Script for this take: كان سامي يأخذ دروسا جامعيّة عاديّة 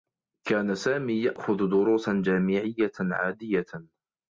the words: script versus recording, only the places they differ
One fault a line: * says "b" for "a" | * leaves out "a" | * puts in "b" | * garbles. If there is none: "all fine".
all fine